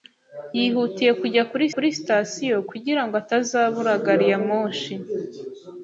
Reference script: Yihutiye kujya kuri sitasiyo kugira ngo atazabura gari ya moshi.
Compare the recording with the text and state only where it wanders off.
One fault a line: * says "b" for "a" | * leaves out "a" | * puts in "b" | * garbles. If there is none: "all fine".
* puts in "kuri"